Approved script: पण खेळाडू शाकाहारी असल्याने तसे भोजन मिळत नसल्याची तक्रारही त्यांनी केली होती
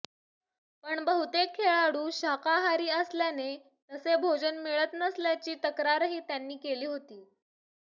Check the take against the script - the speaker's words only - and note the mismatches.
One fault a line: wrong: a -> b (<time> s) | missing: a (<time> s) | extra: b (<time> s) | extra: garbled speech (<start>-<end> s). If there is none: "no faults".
extra: बहुतेक (1.1 s)